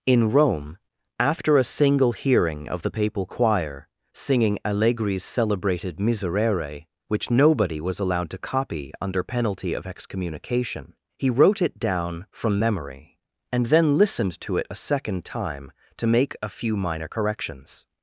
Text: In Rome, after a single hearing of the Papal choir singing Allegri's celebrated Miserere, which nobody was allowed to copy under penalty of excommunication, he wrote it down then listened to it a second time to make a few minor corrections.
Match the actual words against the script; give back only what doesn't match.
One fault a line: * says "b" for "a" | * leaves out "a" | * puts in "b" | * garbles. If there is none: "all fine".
* puts in "from memory and"